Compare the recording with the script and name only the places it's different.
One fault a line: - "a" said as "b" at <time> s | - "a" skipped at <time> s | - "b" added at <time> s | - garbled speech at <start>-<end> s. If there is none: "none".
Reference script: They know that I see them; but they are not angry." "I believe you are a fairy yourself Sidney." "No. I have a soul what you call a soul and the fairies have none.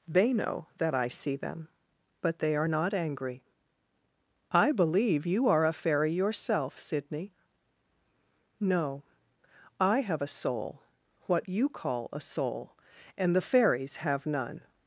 none